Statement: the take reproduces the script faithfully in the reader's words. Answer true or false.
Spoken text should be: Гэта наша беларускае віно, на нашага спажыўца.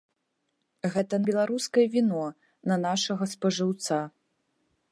false